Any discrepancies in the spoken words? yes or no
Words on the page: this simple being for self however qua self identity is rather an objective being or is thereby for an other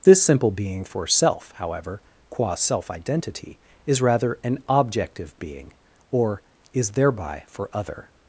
yes